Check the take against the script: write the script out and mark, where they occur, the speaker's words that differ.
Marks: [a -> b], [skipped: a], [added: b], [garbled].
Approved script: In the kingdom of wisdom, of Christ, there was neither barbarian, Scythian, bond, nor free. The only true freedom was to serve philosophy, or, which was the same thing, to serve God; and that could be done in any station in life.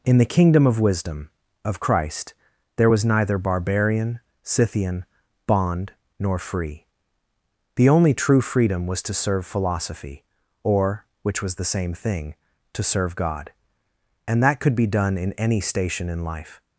In the kingdom of wisdom, of Christ, there was neither barbarian, Scythian, bond, nor free. The only true freedom was to serve philosophy, or, which was the same thing, to serve God; and that could be done in any station in life.